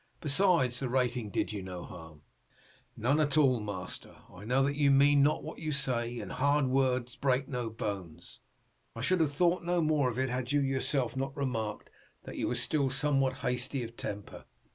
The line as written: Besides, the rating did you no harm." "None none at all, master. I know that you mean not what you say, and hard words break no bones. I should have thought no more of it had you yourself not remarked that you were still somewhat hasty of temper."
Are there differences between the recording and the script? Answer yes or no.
yes